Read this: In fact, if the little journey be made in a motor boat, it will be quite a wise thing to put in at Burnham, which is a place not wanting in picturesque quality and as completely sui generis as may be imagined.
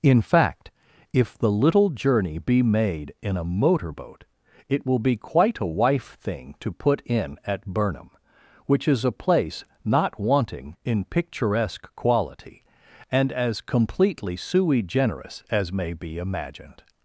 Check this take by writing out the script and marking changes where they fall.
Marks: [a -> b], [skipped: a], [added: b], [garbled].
In fact, if the little journey be made in a motor boat, it will be quite a [wise -> wife] thing to put in at Burnham, which is a place not wanting in picturesque quality and as completely sui generis as may be imagined.